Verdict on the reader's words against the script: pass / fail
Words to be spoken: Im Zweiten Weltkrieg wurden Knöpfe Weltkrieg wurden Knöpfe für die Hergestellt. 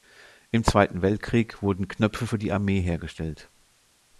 fail